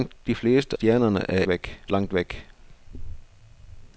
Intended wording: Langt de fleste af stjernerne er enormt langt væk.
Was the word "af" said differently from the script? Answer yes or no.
yes